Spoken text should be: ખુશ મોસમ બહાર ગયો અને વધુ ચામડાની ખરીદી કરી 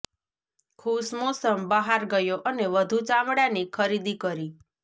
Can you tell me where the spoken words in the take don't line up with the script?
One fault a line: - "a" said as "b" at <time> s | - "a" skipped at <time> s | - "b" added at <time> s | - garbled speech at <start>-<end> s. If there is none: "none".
none